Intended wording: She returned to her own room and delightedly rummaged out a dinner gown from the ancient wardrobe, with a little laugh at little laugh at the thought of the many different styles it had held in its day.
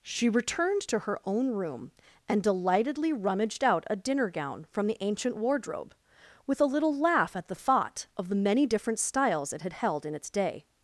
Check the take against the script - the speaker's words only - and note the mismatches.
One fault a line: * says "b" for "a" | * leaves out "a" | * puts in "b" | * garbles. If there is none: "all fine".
* leaves out "little laugh at"